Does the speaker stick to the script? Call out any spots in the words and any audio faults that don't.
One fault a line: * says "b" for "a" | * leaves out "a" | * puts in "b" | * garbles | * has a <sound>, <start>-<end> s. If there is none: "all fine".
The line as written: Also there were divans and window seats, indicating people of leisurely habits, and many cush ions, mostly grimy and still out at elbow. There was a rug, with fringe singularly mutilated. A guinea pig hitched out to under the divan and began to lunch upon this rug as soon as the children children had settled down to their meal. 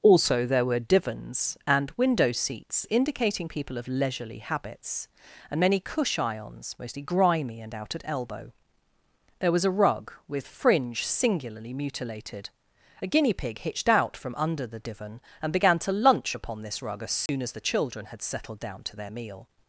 * leaves out "still"
* says "from" for "to"
* has a dropout, 17.3-17.3 s
* leaves out "children"